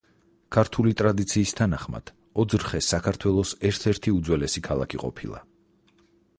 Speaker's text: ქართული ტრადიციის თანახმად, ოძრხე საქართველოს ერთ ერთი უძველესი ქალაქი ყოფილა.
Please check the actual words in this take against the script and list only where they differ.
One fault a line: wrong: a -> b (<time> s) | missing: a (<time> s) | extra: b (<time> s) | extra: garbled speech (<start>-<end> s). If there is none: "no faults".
no faults